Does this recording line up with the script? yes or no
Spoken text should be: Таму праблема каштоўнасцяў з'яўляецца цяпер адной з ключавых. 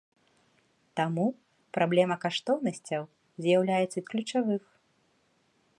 no